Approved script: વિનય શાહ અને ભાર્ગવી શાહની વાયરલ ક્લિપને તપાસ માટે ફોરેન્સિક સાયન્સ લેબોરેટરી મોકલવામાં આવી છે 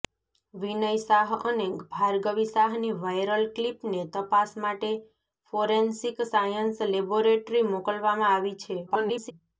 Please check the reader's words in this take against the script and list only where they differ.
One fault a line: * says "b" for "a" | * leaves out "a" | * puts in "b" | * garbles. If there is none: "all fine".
* garbles